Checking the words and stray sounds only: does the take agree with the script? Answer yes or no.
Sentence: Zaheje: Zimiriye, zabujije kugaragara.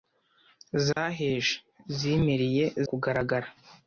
no